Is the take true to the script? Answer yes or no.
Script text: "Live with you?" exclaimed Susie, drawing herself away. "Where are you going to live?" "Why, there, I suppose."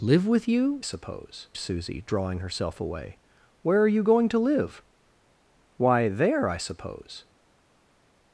no